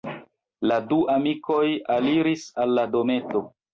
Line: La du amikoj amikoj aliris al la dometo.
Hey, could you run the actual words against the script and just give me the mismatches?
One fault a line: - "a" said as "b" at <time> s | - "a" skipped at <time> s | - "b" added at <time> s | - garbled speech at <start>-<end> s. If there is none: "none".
- "amikoj" skipped at 1.6 s